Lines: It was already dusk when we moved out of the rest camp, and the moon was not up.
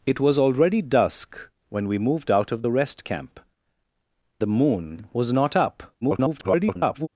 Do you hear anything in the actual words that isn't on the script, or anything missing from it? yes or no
yes